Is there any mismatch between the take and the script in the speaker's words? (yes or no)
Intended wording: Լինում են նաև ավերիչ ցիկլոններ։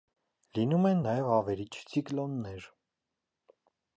no